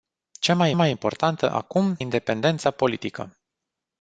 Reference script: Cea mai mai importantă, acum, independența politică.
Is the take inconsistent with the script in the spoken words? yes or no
no